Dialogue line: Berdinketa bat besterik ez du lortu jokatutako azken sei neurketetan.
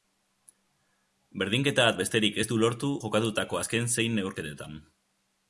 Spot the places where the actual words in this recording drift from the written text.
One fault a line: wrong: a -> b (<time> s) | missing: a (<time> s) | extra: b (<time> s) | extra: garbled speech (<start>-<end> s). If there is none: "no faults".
no faults